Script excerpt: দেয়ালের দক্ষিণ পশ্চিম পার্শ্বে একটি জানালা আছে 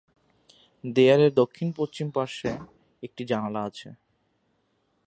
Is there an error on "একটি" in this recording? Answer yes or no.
no